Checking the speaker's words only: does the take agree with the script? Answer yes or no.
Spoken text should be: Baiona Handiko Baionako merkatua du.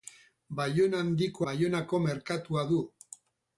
yes